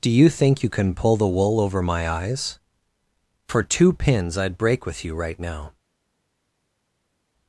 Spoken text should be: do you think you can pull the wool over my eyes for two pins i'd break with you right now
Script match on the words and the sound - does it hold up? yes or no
yes